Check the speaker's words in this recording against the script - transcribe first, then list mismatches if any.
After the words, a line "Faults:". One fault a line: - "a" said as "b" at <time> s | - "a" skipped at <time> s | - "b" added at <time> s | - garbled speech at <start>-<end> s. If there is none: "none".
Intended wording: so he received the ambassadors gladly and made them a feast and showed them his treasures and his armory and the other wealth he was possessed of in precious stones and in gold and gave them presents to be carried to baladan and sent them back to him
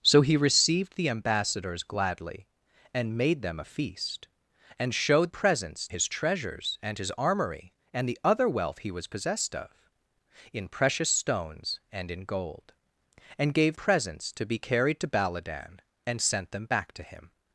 so he received the ambassadors gladly and made them a feast and showed presents his treasures and his armory and the other wealth he was possessed of in precious stones and in gold and gave presents to be carried to baladan and sent them back to him
Faults:
- "them" said as "presents" at 5.3 s
- "them" skipped at 13.8 s